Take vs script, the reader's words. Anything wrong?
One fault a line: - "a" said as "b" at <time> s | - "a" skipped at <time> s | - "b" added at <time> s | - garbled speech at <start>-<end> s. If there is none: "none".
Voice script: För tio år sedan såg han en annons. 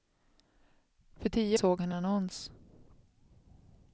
- "år sedan" skipped at 1.6 s
- "en" skipped at 1.9 s